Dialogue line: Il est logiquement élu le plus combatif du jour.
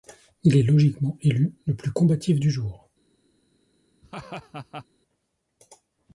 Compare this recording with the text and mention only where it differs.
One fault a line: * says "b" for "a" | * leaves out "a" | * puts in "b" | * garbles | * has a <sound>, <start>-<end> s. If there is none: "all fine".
* has a laugh, 4.0-4.9 s